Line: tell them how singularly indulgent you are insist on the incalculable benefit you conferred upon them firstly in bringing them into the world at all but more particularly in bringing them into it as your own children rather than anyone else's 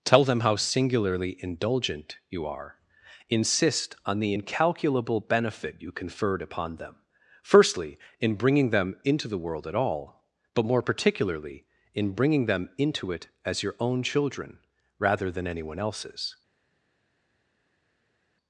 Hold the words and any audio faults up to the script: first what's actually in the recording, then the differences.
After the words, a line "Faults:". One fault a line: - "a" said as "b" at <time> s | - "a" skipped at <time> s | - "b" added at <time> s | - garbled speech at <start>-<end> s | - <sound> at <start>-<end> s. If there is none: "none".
tell them how singularly indulgent you are insist on the incalculable benefit you conferred upon them firstly in bringing them into the world at all but more particularly in bringing them into it as your own children rather than anyone else's
Faults:
none